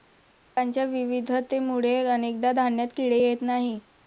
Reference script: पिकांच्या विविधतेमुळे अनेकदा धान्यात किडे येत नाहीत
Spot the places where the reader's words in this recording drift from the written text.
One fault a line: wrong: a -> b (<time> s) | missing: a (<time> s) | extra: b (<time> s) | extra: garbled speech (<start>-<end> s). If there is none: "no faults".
no faults